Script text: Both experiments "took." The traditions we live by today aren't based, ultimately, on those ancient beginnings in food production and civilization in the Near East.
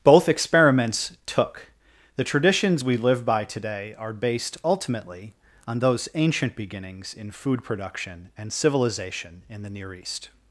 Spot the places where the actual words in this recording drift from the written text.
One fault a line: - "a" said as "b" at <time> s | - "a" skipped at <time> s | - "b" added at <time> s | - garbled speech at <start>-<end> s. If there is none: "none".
- "aren't" said as "are" at 4.0 s